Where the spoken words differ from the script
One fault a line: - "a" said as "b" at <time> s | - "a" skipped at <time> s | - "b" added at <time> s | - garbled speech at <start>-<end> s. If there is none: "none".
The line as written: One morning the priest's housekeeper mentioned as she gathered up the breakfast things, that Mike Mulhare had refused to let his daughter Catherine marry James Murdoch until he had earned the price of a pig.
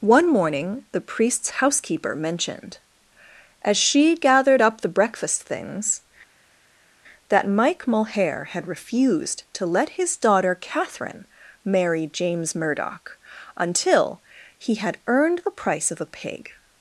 none